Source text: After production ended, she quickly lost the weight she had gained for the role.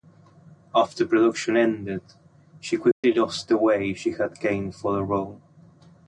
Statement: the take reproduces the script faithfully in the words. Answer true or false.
true